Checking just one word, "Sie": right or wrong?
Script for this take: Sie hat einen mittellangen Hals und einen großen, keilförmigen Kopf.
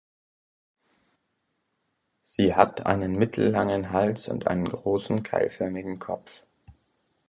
right